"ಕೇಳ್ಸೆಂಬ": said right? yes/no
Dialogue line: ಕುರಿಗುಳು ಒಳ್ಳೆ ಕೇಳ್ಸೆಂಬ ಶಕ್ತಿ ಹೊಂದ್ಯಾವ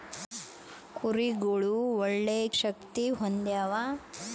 no